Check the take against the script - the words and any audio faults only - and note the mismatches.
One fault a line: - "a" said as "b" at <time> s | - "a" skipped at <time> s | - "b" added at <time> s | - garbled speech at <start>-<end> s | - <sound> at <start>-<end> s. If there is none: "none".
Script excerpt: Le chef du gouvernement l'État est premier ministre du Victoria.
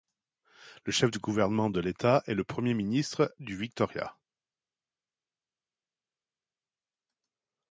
- "de" added at 1.7 s
- "le" added at 2.3 s